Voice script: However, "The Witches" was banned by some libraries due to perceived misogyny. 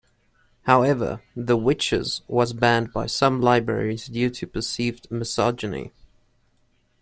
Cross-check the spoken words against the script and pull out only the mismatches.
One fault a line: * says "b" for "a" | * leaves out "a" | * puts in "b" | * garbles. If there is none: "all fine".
all fine